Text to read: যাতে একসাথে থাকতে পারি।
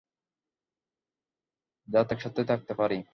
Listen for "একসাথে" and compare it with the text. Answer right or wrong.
right